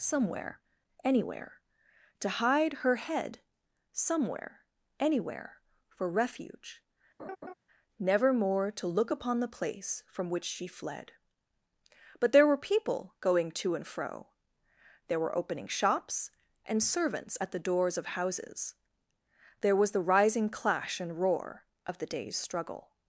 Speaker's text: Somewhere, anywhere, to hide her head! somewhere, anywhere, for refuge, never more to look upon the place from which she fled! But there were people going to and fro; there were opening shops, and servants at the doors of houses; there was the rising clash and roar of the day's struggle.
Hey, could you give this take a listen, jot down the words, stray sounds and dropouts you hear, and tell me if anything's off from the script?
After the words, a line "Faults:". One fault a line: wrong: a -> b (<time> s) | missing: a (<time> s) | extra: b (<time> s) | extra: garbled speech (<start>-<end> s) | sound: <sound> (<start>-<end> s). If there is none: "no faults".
Somewhere, anywhere, to hide her head! somewhere, anywhere, for refuge, never more to look upon the place from which she fled! But there were people going to and fro; there were opening shops, and servants at the doors of houses; there was the rising clash and roar of the day's struggle.
Faults:
sound: laugh (7.2-7.5 s)